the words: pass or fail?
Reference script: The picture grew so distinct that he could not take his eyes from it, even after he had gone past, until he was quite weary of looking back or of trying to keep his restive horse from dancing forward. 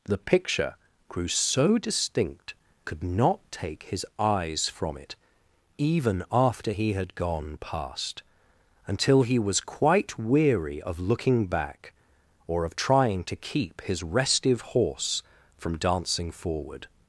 fail